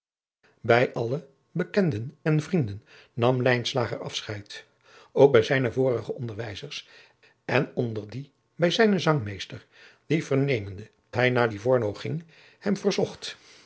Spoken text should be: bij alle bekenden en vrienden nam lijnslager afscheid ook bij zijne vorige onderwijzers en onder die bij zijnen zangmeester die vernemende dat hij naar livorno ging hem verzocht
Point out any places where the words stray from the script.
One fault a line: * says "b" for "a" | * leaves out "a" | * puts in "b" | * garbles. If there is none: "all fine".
* leaves out "dat"